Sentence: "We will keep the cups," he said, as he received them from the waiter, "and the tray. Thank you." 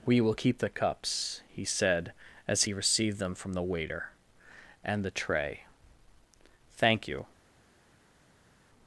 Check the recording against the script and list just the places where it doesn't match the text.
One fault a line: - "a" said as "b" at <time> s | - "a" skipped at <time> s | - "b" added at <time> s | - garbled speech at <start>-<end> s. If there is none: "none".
none